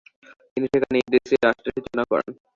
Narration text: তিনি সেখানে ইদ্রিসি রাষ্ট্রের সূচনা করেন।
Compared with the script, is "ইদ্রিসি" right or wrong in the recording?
right